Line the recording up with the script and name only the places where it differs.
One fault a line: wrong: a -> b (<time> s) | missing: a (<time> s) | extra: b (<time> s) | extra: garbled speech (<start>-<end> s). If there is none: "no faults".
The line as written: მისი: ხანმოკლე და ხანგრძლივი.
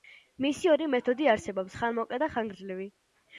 extra: ორი მეთოდი არსებობს (0.8 s)